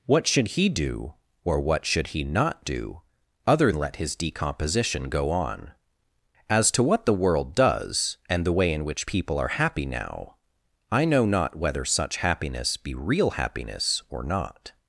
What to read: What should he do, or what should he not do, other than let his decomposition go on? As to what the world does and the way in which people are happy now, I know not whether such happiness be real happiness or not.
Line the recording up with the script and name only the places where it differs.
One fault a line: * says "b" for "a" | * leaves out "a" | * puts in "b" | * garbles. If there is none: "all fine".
* leaves out "than"